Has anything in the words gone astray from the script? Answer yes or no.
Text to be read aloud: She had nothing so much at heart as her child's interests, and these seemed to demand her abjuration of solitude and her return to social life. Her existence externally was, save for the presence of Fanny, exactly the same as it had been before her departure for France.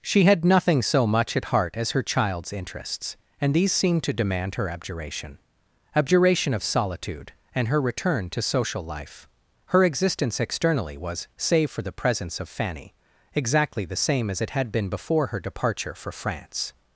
yes